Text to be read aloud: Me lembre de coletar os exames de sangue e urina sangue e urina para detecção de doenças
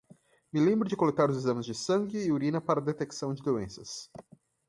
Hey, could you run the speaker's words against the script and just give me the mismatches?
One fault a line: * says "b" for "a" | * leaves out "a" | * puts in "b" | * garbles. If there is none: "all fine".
* leaves out "sangue e urina"